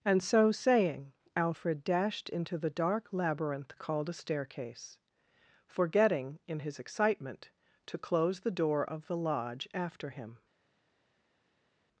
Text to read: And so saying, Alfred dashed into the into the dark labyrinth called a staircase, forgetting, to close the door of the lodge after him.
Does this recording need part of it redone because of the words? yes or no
yes